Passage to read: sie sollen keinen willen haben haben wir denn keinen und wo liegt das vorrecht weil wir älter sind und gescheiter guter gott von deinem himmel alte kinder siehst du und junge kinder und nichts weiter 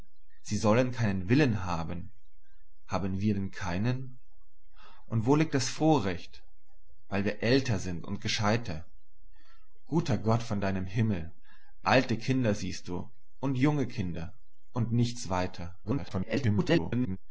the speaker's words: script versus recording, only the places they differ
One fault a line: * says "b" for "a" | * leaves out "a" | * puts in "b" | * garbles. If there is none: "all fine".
* garbles